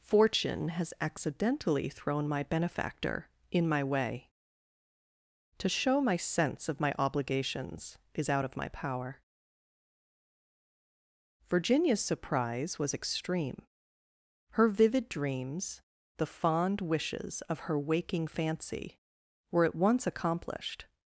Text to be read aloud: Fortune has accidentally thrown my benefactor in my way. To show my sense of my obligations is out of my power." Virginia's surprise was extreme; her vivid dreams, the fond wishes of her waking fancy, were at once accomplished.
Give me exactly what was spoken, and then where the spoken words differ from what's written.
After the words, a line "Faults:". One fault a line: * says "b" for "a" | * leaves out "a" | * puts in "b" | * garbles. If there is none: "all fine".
Fortune has accidentally thrown my benefactor in my way. To show my sense of my obligations is out of my power." Virginia's surprise was extreme; her vivid dreams, the fond wishes of her waking fancy, were at once accomplished.
Faults:
all fine